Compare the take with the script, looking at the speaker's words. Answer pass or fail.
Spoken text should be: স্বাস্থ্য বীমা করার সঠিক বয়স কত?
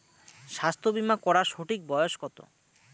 pass